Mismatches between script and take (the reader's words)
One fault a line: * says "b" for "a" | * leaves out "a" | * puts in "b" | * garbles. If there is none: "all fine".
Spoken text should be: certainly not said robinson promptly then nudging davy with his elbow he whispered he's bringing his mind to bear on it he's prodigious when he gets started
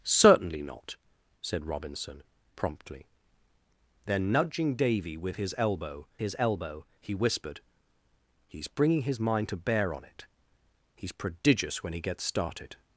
* puts in "his elbow"